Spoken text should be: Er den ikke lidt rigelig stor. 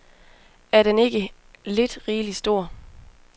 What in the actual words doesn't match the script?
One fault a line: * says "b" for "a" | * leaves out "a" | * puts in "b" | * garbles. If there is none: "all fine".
all fine